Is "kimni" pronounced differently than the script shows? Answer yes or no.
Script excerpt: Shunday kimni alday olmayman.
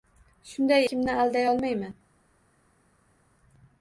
no